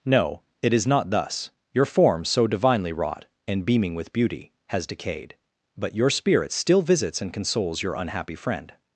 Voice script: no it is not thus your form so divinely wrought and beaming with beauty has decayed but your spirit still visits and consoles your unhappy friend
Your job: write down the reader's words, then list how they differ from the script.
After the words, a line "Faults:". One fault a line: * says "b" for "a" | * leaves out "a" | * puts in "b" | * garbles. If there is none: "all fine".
no it is not thus your form so divinely wrought and beaming with beauty has decayed but your spirit still visits and consoles your unhappy friend
Faults:
all fine